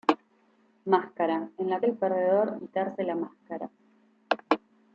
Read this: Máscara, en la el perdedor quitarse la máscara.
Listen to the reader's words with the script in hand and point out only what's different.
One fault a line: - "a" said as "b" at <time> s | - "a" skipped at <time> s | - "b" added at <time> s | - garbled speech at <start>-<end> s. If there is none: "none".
none